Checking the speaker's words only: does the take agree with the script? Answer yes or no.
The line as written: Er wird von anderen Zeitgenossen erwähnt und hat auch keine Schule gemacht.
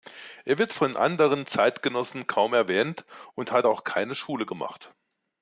no